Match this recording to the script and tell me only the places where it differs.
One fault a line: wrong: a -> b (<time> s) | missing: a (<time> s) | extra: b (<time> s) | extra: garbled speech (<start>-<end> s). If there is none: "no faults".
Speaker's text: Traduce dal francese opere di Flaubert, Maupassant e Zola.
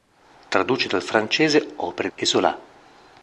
missing: di Flaubert Maupassant (2.1 s)